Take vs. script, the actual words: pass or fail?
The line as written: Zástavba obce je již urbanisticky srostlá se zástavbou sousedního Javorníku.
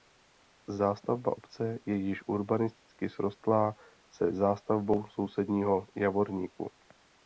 pass